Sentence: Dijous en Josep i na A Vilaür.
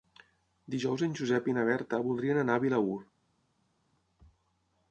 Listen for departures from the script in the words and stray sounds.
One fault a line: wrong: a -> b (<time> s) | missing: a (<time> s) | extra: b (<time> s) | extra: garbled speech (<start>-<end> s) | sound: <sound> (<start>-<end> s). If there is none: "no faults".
extra: Berta voldrien anar (1.7 s)